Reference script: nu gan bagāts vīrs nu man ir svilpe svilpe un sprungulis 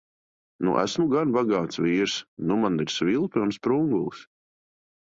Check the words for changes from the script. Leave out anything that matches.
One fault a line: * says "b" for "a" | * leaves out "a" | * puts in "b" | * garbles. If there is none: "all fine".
* puts in "esmu"
* leaves out "svilpe"